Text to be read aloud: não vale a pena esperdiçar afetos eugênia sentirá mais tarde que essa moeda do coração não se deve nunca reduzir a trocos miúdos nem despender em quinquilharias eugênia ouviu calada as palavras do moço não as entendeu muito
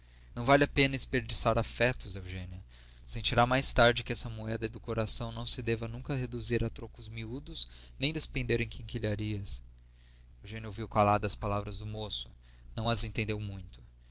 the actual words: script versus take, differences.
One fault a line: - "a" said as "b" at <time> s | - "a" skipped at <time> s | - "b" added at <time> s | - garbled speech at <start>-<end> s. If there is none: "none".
none